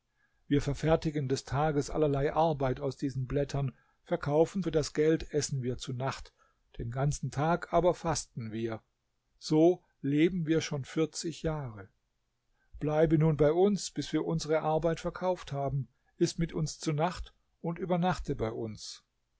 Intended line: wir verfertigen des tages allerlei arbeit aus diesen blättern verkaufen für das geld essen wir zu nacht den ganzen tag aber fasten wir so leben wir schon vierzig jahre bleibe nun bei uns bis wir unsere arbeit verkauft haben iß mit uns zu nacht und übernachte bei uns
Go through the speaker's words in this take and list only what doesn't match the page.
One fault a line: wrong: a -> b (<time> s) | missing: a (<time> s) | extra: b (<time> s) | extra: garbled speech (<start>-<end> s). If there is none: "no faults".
no faults